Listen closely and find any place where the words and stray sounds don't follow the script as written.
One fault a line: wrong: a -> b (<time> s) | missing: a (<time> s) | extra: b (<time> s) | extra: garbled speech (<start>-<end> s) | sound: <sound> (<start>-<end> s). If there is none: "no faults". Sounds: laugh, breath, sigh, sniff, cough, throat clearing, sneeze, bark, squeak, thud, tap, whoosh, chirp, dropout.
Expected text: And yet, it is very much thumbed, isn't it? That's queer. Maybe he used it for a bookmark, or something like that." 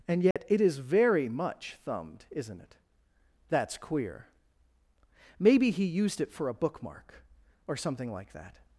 sound: dropout (0.3-0.4 s)